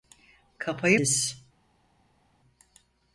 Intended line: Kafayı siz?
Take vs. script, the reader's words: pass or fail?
pass